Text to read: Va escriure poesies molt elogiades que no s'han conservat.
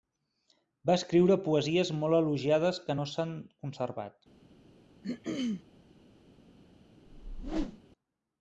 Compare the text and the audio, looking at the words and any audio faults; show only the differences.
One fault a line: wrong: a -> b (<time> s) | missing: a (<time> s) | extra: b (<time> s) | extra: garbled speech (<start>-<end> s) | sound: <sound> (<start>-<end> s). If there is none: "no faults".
sound: throat clearing (5.0-5.6 s)
sound: whoosh (7.1-7.8 s)